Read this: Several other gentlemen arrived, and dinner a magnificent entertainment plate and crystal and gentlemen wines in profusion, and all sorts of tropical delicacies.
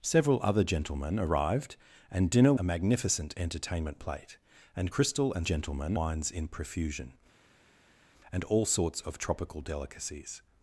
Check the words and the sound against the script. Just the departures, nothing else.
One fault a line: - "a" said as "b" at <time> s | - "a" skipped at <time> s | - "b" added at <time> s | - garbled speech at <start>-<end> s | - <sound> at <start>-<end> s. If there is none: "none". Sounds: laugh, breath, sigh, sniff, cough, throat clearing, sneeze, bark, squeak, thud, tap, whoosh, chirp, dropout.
none